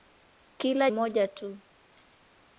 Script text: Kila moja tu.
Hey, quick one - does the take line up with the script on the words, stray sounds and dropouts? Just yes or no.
yes